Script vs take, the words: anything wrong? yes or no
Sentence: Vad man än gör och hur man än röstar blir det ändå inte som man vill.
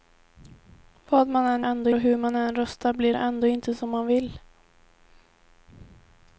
yes